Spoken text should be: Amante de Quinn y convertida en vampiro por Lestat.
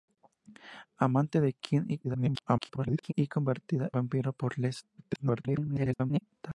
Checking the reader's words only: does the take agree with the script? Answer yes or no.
no